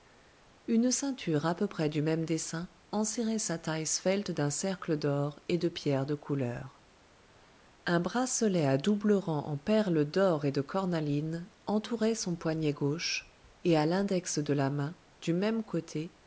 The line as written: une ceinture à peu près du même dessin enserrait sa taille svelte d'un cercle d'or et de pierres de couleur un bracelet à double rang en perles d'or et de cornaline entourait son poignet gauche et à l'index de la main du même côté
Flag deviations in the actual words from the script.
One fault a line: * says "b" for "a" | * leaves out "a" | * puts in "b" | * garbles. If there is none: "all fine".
all fine